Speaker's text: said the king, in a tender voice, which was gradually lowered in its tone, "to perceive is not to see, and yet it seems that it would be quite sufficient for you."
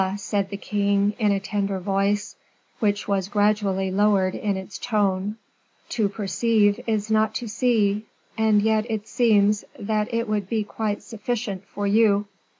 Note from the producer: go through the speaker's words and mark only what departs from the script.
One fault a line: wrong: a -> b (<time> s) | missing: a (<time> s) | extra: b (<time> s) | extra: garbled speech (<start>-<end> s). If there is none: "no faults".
no faults